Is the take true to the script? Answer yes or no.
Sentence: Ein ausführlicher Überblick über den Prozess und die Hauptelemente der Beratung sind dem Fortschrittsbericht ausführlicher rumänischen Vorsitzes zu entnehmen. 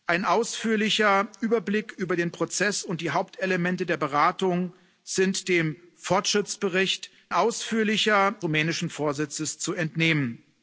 yes